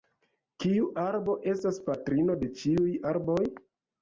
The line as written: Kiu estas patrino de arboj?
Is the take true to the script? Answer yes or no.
no